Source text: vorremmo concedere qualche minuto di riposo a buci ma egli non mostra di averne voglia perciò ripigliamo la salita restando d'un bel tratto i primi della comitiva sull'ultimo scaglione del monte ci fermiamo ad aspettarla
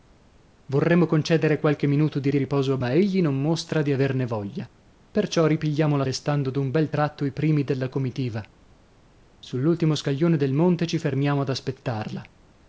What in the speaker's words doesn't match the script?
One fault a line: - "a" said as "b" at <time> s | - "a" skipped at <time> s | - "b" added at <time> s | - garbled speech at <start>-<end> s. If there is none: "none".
- "di" added at 2.3 s
- "buci" skipped at 2.8 s
- "salita" skipped at 6.1 s